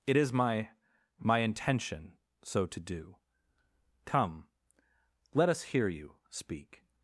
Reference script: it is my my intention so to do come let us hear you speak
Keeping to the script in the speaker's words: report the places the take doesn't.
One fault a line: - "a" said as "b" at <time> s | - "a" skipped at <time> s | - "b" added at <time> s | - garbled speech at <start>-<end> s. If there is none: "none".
none